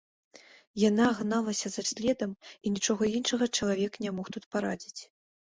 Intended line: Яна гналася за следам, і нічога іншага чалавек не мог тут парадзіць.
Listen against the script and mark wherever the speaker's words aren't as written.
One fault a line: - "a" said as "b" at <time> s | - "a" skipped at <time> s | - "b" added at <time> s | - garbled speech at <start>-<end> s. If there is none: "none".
none